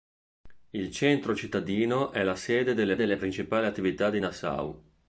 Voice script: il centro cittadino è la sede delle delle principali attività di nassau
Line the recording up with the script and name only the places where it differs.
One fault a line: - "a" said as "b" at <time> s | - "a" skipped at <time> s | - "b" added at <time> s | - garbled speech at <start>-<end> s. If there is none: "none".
none